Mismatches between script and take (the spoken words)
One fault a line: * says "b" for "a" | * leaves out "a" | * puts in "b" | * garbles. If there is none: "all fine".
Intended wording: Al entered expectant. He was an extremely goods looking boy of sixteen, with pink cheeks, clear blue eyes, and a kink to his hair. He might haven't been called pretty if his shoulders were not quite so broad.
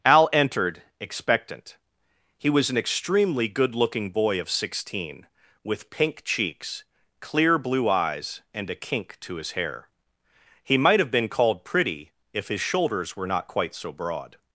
* says "good" for "goods"
* says "have" for "haven't"